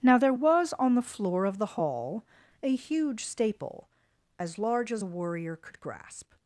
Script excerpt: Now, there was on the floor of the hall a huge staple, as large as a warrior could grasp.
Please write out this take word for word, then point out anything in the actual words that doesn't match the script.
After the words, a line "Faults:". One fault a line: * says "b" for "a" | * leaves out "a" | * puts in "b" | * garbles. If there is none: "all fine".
Now, there was on the floor of the hall a huge staple, as large as a warrior could grasp.
Faults:
all fine